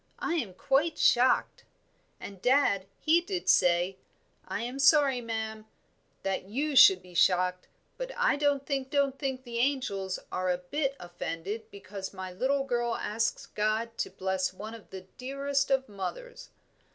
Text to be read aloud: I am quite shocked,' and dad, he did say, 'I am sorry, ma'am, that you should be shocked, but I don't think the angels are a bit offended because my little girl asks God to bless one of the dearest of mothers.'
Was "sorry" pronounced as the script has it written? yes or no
yes